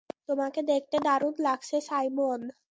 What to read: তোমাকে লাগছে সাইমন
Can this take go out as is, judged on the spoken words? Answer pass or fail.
fail